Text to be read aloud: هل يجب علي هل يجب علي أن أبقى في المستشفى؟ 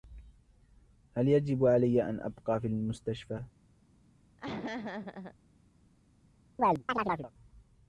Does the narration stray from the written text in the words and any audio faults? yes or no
yes